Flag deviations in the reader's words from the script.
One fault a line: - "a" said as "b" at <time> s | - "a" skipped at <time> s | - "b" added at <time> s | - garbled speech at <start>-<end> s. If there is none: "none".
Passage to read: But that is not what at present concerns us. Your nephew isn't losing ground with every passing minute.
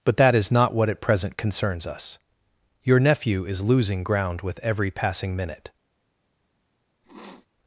- "isn't" said as "is" at 3.5 s